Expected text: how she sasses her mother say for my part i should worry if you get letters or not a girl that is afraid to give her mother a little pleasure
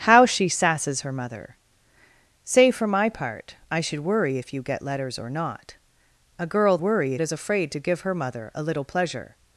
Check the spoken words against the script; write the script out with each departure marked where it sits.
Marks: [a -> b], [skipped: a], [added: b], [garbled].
how she sasses her mother say for my part i should worry if you get letters or not a girl [that -> worry] is afraid to give her mother a little pleasure